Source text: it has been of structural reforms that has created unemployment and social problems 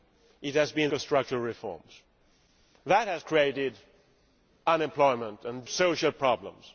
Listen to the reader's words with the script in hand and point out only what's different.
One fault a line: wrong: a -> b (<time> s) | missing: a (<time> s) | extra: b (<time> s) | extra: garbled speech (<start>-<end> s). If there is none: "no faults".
no faults